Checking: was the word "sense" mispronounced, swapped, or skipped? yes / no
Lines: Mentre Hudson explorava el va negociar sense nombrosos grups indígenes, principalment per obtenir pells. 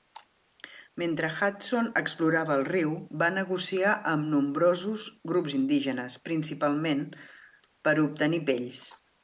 yes